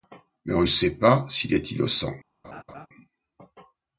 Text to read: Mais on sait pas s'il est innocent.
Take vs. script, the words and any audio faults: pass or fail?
fail